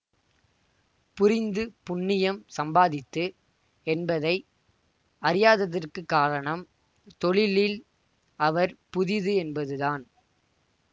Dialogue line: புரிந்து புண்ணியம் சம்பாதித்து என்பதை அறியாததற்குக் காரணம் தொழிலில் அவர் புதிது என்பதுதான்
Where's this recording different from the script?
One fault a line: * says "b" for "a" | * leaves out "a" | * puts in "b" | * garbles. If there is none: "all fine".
all fine